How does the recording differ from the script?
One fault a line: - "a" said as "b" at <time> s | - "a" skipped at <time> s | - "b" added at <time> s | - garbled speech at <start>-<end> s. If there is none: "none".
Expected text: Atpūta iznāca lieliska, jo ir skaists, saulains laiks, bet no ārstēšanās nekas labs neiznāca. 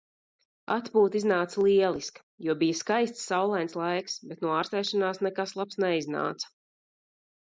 - "ir" said as "bija" at 2.6 s